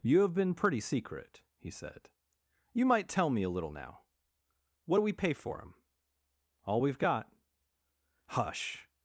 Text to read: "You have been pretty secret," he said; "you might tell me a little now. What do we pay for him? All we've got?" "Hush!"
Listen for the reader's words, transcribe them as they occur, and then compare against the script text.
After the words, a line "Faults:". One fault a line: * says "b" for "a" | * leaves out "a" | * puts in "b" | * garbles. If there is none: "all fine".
"You have been pretty secret," he said; "you might tell me a little now. What do we pay for him? All we've got?" "Hush!"
Faults:
all fine